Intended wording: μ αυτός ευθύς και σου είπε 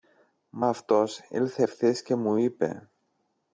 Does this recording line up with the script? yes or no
no